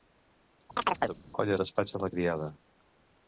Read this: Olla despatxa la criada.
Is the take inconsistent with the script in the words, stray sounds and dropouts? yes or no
yes